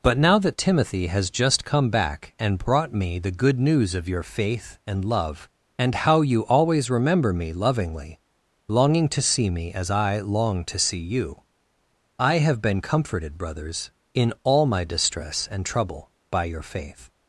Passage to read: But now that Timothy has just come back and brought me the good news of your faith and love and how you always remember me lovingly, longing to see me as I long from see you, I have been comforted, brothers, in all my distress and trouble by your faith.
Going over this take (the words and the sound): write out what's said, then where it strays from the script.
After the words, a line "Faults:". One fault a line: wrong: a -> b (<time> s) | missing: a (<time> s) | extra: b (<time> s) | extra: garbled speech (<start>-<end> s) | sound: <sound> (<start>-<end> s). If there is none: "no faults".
But now that Timothy has just come back and brought me the good news of your faith and love and how you always remember me lovingly, longing to see me as I long to see you, I have been comforted, brothers, in all my distress and trouble by your faith.
Faults:
wrong: from -> to (10.7 s)